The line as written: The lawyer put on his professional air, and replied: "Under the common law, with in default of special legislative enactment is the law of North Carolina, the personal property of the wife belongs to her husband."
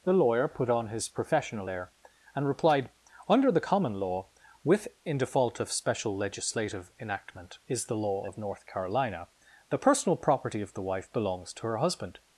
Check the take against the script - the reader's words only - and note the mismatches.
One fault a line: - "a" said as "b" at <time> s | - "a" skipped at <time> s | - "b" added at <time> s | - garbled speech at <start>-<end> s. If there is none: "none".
none